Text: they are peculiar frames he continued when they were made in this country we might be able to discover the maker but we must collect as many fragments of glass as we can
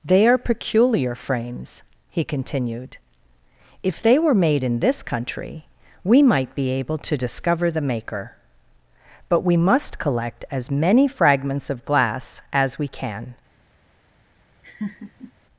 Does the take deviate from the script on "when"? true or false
true